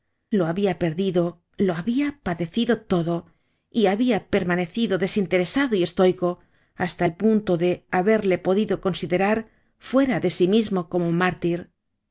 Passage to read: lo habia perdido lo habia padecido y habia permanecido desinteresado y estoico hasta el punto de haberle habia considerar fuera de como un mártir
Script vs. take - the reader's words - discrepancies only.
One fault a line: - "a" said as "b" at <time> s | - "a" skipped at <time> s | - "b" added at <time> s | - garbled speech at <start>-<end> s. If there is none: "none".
- "todo" added at 2.8 s
- "habia" said as "podido" at 8.4 s
- "sí mismo" added at 10.3 s